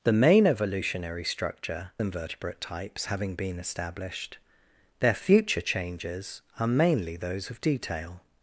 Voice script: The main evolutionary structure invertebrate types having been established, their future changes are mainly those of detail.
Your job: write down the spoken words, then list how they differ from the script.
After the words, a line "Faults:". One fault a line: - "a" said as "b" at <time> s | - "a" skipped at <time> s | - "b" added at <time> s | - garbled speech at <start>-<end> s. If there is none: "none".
The main evolutionary structure invertebrate types having been established, their future changes are mainly those of detail.
Faults:
none